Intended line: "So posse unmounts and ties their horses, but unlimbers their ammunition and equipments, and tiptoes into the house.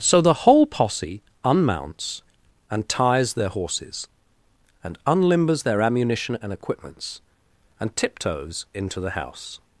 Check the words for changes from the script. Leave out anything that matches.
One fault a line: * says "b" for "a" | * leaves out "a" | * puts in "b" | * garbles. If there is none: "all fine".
* puts in "the whole"
* says "and" for "but"